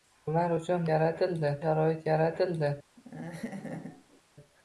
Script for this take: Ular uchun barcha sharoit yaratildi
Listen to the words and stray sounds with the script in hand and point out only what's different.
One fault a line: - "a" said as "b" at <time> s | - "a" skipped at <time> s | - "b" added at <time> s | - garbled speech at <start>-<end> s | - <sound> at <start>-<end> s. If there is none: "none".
- "barcha" said as "yaratildi" at 0.9 s
- laugh at 3.0-4.2 s